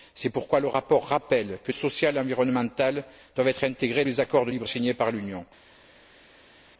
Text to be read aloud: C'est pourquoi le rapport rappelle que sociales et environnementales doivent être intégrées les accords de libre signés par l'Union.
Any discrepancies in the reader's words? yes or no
no